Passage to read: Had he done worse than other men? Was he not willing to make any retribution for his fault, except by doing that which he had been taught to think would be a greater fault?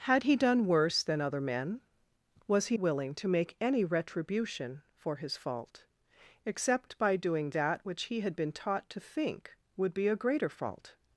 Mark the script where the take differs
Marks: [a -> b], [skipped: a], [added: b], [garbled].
Had he done worse than other men? Was he [skipped: not] willing to make any retribution for his fault, except by doing that which he had been taught to think would be a greater fault?